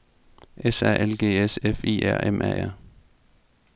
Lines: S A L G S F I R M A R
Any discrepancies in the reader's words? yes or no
no